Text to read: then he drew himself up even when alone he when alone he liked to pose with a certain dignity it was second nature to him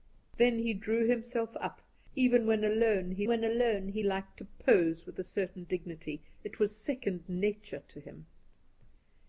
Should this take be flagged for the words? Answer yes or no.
no